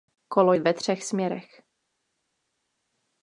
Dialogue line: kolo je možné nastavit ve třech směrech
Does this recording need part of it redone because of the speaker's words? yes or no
yes